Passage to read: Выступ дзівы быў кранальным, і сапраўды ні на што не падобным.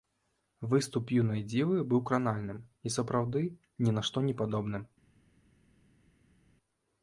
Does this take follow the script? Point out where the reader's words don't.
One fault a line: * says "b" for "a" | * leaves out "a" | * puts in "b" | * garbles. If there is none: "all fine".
* puts in "юнай"